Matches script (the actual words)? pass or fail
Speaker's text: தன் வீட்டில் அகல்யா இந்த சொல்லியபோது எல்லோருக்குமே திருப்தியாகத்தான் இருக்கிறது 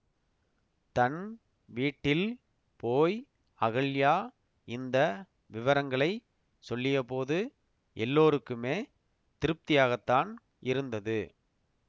fail